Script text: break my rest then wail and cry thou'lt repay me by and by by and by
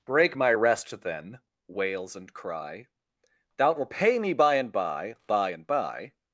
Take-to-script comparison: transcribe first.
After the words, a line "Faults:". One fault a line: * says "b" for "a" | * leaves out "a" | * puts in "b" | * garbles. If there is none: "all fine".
break my rest then wails and cry thou'lt repay me by and by by and by
Faults:
* says "wails" for "wail"